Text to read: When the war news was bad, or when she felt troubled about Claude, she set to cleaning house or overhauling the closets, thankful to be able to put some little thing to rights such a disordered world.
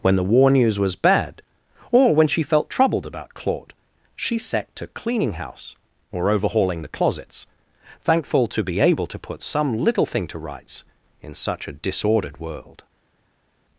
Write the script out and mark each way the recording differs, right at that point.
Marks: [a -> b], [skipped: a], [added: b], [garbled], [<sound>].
When the war news was bad, or when she felt troubled about Claude, she set to cleaning house or overhauling the closets, thankful to be able to put some little thing to rights [added: in] such a disordered world.